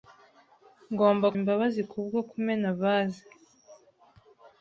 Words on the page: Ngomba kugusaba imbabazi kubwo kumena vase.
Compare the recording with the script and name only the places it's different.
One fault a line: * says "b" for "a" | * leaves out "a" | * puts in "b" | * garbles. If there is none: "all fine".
* leaves out "kugusaba"